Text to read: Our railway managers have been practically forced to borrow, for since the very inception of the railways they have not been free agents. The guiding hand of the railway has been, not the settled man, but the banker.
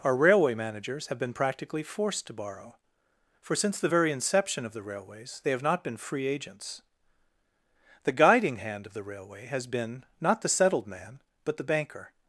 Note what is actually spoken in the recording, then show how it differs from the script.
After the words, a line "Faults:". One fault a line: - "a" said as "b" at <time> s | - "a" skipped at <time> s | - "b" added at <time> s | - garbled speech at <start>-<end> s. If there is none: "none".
Our railway managers have been practically forced to borrow, for since the very inception of the railways they have not been free agents. The guiding hand of the railway has been, not the settled man, but the banker.
Faults:
none